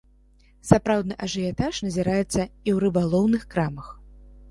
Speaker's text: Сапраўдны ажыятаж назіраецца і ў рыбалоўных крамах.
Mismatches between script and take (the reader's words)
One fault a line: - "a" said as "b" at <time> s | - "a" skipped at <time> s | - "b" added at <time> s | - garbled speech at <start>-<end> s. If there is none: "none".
none